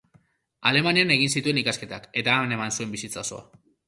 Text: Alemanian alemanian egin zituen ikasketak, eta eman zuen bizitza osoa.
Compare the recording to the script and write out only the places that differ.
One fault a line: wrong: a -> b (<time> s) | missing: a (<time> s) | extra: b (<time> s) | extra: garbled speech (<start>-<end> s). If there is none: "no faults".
missing: alemanian (1.1 s)
extra: han (2.4 s)